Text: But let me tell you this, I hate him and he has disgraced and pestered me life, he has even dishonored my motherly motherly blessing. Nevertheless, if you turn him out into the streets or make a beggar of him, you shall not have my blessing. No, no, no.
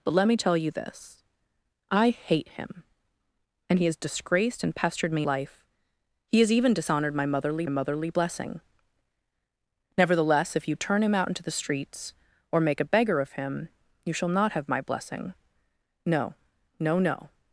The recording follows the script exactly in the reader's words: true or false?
true